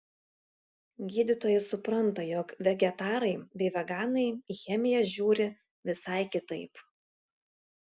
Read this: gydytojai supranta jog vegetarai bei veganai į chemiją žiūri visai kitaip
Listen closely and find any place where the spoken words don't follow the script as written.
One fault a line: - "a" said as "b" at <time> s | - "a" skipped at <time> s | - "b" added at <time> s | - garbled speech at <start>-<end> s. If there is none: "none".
none